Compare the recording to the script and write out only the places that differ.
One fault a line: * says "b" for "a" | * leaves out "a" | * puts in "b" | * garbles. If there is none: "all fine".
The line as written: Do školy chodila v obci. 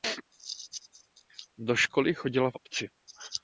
all fine